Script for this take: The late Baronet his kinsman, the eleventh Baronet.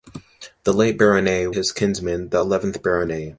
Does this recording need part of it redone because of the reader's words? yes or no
no